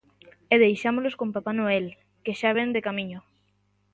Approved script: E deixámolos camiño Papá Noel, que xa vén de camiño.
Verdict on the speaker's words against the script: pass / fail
fail